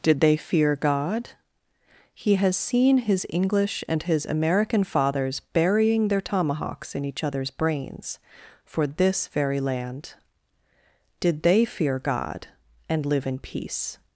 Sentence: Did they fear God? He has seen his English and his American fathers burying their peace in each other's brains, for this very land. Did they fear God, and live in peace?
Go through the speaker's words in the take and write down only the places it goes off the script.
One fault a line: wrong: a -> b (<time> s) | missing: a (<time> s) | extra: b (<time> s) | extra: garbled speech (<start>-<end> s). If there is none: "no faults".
wrong: peace -> tomahawks (6.2 s)